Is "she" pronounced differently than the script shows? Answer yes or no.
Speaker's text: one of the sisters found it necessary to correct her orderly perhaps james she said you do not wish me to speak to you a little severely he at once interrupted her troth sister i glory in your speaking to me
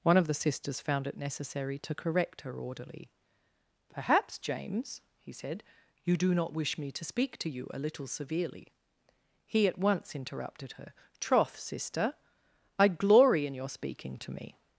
yes